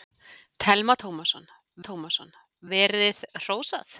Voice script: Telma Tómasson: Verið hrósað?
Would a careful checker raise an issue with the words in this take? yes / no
yes